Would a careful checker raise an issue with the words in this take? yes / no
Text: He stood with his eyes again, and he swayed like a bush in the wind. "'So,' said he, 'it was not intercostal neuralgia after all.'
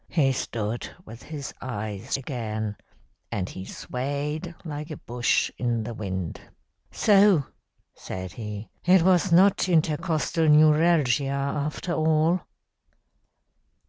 no